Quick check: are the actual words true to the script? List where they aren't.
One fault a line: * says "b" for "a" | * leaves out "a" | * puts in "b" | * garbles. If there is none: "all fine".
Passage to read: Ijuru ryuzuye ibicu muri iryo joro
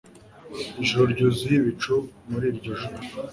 all fine